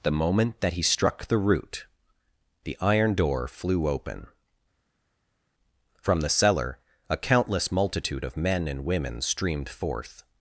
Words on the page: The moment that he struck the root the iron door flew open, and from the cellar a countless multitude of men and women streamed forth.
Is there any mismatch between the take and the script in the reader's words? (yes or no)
yes